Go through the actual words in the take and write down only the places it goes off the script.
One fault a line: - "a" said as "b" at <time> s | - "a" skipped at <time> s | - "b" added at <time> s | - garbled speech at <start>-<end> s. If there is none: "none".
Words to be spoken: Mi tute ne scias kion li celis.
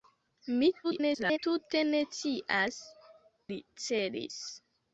- garbled speech at 0.8-1.4 s
- "kion" skipped at 2.8 s